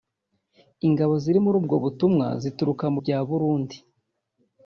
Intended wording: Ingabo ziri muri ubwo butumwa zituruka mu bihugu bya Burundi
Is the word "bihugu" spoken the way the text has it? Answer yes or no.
no